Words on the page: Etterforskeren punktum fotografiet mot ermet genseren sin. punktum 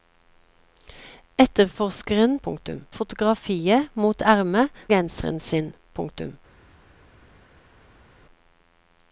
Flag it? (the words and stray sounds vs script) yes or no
no